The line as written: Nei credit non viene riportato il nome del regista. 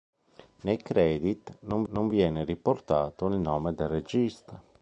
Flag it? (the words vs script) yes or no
yes